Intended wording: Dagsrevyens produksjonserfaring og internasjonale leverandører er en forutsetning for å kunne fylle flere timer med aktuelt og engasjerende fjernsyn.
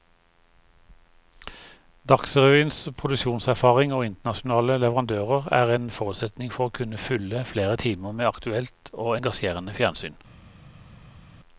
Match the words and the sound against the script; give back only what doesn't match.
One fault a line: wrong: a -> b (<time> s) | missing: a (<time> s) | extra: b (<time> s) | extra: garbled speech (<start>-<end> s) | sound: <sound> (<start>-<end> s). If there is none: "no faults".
no faults